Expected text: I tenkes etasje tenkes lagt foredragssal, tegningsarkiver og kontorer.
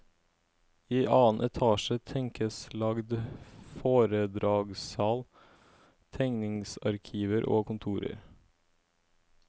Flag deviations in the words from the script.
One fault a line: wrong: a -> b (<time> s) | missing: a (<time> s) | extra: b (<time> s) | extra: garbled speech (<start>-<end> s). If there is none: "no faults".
wrong: tenkes -> annen (1.0 s)